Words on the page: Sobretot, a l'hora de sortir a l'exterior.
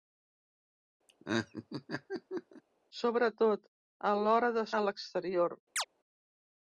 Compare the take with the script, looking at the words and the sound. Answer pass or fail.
fail